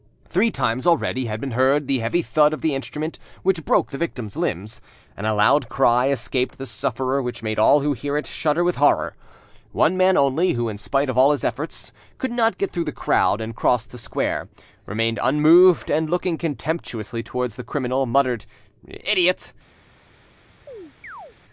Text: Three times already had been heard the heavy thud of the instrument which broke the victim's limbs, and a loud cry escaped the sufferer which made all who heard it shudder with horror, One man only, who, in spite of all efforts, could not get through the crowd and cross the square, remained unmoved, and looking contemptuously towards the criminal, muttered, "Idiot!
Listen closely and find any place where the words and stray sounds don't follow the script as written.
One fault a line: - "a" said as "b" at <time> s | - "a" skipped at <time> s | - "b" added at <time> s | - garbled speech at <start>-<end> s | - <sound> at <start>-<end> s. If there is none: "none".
- "his" added at 11.3 s
- chirp at 20.7-21.4 s